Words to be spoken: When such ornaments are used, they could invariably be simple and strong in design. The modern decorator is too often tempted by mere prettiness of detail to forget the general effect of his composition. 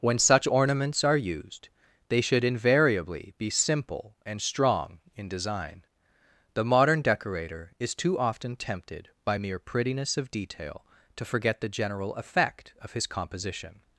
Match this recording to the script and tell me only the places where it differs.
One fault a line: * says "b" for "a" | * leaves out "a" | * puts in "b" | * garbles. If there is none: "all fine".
* says "should" for "could"